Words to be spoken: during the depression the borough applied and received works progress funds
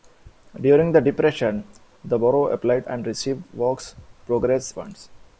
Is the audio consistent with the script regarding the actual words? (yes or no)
yes